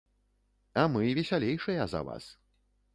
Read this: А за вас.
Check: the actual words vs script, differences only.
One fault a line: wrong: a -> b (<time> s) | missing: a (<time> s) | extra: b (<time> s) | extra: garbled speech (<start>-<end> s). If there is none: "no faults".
extra: мы весялейшыя (0.9 s)